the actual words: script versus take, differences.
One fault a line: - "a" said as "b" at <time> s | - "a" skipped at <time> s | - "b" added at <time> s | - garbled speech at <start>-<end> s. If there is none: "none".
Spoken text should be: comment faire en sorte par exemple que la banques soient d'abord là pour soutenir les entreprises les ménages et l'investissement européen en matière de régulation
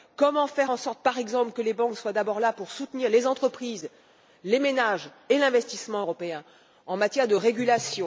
- "la" said as "les" at 1.6 s